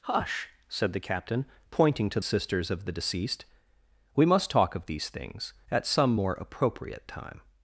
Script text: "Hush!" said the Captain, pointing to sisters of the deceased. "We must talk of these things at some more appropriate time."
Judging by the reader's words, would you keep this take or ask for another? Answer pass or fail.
pass